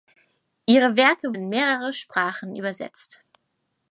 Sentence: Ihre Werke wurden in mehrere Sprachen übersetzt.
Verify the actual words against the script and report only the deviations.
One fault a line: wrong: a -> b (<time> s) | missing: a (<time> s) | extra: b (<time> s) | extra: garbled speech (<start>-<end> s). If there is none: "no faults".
missing: wurden (1.4 s)